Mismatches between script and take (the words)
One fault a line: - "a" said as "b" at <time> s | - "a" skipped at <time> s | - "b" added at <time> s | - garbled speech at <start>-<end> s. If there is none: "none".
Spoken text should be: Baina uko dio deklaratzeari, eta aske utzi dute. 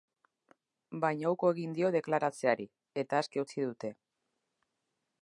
- "egin" added at 1.6 s